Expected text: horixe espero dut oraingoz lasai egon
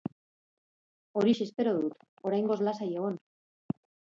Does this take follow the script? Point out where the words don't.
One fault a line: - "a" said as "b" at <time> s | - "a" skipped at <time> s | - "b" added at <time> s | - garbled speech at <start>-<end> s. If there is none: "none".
none